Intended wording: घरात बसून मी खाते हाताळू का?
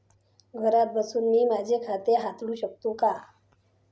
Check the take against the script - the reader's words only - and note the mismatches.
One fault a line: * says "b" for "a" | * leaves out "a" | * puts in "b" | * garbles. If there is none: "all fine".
* puts in "माझे"
* puts in "शकते"